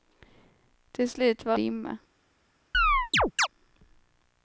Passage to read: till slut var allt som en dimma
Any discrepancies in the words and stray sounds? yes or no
yes